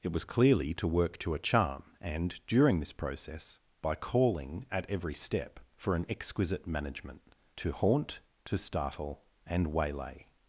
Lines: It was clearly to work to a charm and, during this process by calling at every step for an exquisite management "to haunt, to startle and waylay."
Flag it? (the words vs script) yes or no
no